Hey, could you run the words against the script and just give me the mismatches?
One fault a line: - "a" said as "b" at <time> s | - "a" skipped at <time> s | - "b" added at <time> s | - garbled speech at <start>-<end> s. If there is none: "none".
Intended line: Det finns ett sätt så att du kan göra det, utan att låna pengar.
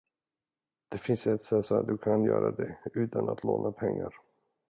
none